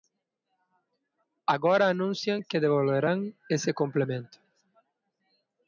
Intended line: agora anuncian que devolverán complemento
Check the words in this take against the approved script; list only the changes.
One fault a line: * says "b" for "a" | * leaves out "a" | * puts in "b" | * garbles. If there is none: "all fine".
* puts in "ese"